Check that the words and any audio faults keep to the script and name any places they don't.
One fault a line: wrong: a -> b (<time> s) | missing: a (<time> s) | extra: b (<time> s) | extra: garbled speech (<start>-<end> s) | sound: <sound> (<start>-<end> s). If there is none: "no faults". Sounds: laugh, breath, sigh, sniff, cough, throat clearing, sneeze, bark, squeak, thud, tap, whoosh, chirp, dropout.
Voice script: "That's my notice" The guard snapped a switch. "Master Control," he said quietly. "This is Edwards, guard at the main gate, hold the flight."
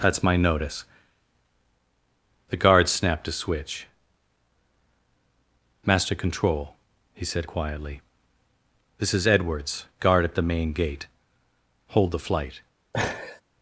sound: laugh (12.9-13.4 s)